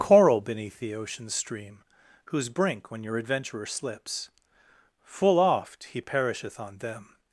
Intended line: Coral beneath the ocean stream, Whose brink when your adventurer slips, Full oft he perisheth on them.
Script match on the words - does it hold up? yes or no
yes